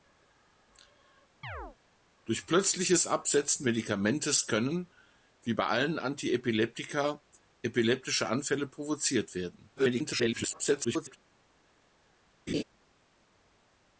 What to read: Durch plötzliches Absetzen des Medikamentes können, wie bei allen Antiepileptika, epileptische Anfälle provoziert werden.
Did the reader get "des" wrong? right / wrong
wrong